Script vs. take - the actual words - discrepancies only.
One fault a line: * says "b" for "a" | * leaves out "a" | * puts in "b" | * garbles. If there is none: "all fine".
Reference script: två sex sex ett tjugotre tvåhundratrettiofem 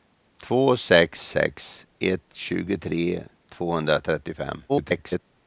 * garbles